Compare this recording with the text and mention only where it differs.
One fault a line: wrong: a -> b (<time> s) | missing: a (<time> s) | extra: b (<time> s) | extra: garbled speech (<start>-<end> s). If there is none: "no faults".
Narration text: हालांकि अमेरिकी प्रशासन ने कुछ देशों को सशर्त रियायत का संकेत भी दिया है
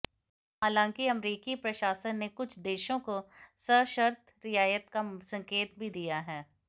no faults